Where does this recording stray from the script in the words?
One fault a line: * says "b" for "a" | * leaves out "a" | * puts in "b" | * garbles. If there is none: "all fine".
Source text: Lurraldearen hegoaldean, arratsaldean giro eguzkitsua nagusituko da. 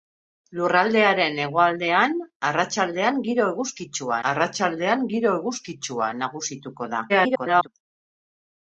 * puts in "arratsaldean giro eguzkitsua"
* garbles